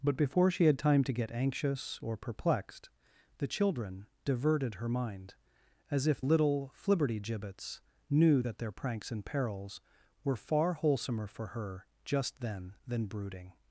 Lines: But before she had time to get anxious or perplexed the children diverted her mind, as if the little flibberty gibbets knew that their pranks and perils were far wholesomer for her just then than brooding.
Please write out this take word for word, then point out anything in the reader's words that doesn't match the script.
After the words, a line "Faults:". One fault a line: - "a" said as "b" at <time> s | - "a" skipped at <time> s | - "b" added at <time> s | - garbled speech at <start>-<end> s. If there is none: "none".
But before she had time to get anxious or perplexed the children diverted her mind, as if little flibberty gibbets knew that their pranks and perils were far wholesomer for her just then than brooding.
Faults:
- "the" skipped at 6.2 s